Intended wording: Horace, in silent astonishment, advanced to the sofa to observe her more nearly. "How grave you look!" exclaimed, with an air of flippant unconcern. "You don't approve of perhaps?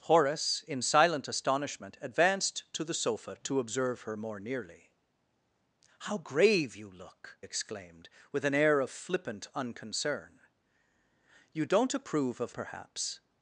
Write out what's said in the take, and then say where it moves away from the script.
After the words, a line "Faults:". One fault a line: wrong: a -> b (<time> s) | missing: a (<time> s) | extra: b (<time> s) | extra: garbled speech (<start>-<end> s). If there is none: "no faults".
Horace, in silent astonishment, advanced to the sofa to observe her more nearly. "How grave you look!" exclaimed, with an air of flippant unconcern. "You don't approve of perhaps?
Faults:
no faults